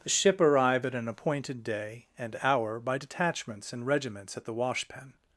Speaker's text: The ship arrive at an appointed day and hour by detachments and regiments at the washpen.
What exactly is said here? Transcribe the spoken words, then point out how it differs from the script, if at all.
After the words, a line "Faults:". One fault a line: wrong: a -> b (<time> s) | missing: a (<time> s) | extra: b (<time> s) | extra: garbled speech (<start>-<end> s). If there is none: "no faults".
The ship arrive at an appointed day and hour by detachments and regiments at the washpen.
Faults:
no faults